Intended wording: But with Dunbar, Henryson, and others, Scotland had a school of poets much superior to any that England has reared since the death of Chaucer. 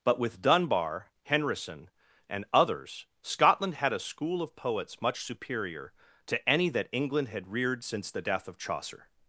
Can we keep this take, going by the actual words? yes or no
no